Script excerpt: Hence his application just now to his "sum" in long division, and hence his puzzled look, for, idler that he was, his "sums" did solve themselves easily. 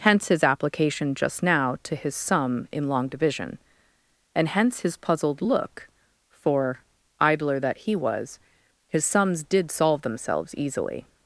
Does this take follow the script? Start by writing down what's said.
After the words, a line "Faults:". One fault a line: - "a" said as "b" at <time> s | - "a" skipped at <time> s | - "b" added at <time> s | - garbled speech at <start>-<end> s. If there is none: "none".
Hence his application just now to his "sum" in long division, and hence his puzzled look, for, idler that he was, his "sums" did solve themselves easily.
Faults:
none